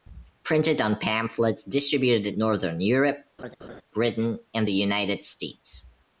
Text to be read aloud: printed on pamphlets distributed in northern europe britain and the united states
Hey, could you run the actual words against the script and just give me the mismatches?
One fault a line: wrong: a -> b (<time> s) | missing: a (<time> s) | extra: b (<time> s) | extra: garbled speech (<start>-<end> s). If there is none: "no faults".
missing: in (2.3 s)